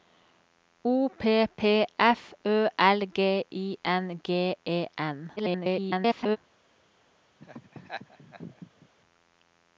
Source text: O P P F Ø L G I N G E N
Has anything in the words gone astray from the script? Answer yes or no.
yes